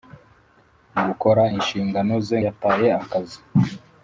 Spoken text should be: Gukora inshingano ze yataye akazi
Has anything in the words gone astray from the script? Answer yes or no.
no